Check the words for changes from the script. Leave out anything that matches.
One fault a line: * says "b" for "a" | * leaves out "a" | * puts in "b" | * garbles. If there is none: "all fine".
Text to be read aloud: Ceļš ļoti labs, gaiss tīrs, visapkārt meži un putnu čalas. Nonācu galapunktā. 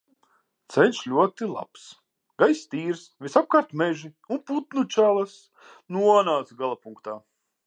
all fine